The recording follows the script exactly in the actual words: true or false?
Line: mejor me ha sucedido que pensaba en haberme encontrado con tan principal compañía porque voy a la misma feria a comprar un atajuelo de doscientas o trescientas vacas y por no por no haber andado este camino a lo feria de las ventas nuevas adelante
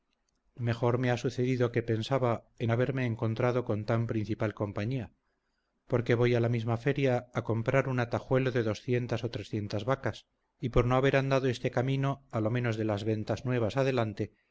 false